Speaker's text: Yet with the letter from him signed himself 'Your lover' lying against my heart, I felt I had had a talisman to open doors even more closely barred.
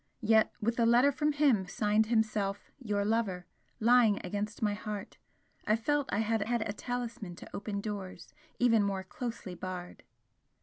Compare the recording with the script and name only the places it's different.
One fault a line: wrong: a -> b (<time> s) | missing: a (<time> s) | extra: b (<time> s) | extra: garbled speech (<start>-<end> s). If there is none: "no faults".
no faults